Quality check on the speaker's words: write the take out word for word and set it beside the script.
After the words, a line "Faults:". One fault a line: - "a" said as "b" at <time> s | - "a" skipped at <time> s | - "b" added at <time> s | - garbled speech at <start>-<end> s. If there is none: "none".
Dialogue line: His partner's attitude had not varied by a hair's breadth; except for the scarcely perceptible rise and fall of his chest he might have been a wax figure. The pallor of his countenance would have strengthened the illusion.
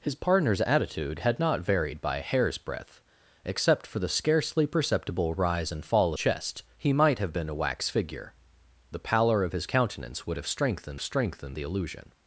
His partner's attitude had not varied by a hair's breadth; except for the scarcely perceptible rise and fall chest he might have been a wax figure. The pallor of his countenance would have strengthened strengthened the illusion.
Faults:
- "of his" skipped at 6.1 s
- "strengthened" added at 11.0 s